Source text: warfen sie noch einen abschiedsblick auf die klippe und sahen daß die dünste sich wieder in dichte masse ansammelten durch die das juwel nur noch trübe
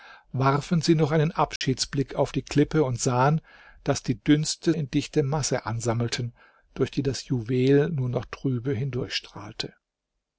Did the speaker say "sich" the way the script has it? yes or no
no